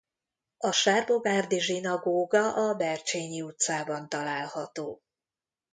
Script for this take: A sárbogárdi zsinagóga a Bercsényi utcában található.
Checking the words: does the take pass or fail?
pass